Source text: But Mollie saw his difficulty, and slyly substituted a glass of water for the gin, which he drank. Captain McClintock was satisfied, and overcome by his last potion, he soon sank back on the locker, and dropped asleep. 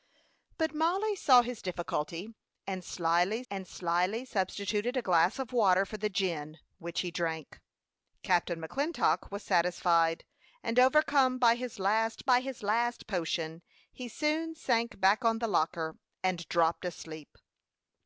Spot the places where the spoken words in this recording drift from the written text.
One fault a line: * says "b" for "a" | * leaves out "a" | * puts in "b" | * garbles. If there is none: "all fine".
* puts in "and slyly"
* puts in "by his last"